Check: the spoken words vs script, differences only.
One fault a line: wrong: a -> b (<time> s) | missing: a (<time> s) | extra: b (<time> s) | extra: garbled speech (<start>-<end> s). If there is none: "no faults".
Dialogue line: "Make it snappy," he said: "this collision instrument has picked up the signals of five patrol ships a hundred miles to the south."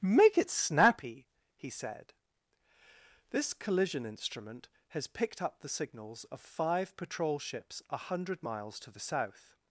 no faults